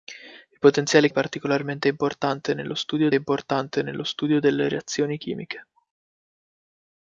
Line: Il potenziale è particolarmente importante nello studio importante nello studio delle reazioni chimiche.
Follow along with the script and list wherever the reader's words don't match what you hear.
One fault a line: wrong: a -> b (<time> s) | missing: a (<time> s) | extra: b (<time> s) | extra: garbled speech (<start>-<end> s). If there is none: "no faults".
no faults